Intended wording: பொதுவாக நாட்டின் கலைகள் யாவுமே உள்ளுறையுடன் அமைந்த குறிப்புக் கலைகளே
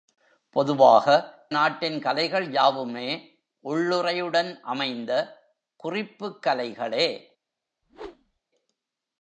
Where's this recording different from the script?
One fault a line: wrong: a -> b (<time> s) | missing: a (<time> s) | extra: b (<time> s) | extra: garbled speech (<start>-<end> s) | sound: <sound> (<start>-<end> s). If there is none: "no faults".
sound: whoosh (7.8-8.4 s)